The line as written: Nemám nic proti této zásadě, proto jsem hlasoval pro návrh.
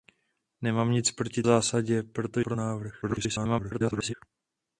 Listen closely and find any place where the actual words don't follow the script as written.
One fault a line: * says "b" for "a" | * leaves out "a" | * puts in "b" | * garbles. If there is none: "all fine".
* leaves out "této"
* leaves out "jsem hlasoval"
* garbles